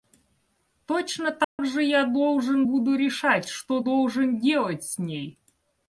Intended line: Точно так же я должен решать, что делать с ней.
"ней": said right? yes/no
yes